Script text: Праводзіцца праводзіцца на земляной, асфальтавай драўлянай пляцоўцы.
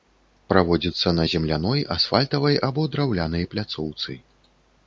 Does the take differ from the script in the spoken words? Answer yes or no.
yes